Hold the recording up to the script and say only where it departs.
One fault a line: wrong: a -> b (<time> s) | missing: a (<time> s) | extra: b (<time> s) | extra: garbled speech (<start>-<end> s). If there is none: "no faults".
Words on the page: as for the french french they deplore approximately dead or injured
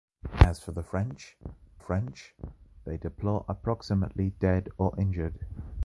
no faults